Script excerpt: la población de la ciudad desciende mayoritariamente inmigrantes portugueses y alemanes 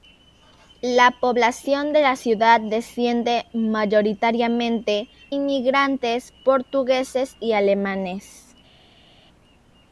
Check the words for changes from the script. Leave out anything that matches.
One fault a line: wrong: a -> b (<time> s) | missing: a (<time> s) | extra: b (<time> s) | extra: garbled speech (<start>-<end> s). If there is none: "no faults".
no faults